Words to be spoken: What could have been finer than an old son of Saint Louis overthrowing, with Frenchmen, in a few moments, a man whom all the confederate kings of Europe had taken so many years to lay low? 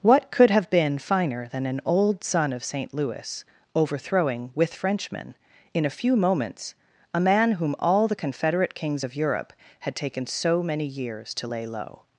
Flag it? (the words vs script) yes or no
no